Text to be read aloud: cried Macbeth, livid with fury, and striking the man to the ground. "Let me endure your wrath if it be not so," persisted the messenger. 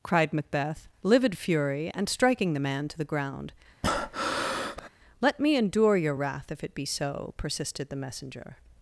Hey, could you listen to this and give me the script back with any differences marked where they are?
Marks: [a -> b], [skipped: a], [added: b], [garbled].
cried Macbeth, livid [skipped: with] fury, and striking the man to the ground. "Let me endure your wrath if it be [skipped: not] so," persisted the messenger.